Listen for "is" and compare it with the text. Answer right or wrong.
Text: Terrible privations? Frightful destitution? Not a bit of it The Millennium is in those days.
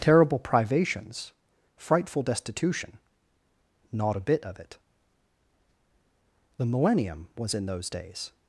wrong